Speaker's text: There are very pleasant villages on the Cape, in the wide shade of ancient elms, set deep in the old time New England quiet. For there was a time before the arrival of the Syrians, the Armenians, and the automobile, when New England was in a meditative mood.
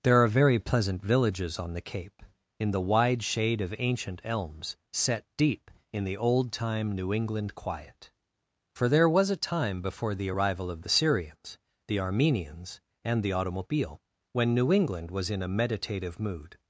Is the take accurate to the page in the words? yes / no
yes